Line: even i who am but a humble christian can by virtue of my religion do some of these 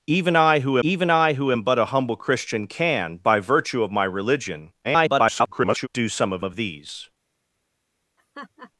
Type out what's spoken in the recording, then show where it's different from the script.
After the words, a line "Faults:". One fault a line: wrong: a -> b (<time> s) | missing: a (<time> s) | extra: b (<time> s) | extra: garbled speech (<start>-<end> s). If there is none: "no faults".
even i who even i who am but a humble christian can by virtue of my religion [garbled] do some of of these
Faults:
extra: even i who (0.8 s)
extra: garbled speech (4.8-5.9 s)
extra: of (6.4 s)